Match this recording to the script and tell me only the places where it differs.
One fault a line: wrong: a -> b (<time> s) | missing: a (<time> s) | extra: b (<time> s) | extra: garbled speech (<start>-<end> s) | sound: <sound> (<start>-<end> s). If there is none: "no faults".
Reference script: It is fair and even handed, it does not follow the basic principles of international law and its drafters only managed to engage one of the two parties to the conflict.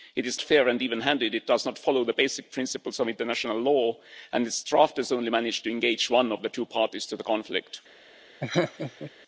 sound: laugh (8.4-9.1 s)